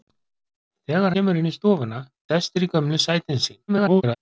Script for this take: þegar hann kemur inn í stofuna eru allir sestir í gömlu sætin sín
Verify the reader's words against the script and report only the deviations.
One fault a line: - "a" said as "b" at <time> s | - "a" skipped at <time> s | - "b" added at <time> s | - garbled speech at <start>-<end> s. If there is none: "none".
- "hann" skipped at 1.1 s
- "eru allir" skipped at 2.0 s
- garbled speech at 3.7-4.2 s